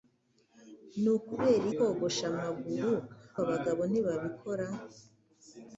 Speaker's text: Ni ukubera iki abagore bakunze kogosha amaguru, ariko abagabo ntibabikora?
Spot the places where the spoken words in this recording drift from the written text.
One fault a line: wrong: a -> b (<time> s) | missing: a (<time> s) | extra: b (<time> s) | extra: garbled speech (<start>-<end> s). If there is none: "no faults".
missing: iki abagore bakunze (1.6 s)
missing: ariko (2.9 s)